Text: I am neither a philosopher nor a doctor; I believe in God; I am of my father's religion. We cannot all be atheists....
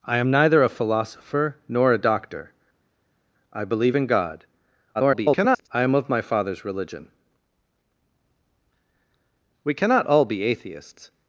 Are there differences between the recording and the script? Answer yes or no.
yes